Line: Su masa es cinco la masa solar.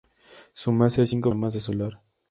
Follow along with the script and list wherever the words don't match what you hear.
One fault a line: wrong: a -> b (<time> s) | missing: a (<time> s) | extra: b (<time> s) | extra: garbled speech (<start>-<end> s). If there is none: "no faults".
no faults